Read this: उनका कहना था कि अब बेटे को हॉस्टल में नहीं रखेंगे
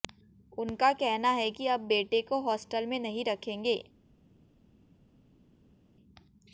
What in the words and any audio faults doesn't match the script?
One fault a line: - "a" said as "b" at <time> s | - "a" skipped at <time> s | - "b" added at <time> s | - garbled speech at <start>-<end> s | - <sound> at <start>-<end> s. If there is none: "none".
- "था" said as "है" at 1.3 s